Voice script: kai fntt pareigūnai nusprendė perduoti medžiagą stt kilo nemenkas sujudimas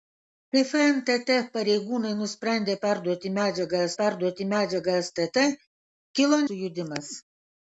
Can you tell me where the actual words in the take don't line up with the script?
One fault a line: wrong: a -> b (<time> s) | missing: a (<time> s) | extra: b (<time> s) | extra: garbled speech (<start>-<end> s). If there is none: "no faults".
extra: perduoti medžiagą (4.0 s)
missing: nemenkas (6.4 s)